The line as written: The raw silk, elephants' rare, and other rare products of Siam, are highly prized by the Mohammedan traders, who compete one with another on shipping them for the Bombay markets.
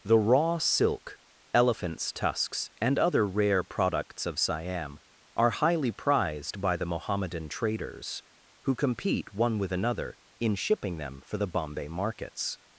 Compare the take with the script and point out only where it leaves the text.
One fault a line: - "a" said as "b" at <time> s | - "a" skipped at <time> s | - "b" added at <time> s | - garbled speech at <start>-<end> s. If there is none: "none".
- "rare" said as "tusks" at 2.1 s
- "on" said as "in" at 10.4 s